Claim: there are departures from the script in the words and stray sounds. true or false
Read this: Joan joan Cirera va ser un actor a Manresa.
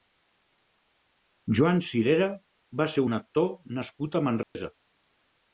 true